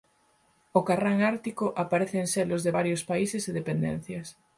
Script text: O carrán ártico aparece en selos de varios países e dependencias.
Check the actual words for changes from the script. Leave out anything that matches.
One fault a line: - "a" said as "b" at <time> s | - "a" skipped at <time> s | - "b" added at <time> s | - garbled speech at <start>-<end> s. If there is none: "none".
none